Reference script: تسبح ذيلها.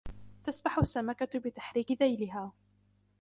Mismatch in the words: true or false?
true